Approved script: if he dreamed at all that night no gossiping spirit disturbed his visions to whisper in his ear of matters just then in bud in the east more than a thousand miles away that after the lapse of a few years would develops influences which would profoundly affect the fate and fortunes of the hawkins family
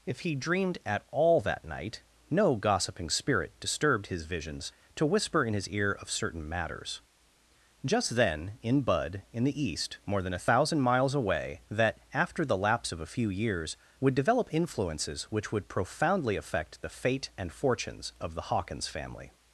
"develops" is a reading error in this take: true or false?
true